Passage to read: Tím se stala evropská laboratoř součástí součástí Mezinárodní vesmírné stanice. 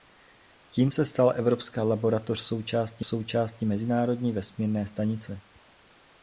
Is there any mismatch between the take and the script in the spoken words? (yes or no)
no